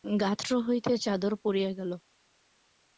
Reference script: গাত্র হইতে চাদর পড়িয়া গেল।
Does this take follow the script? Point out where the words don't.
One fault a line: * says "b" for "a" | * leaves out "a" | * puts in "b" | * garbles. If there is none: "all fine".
all fine